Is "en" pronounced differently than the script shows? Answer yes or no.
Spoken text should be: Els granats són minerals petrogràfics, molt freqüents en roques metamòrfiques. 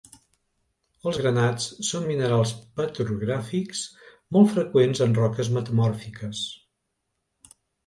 no